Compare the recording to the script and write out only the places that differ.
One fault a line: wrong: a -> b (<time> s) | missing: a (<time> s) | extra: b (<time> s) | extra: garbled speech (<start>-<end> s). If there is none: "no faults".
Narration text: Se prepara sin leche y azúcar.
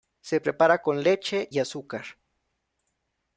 wrong: sin -> con (0.8 s)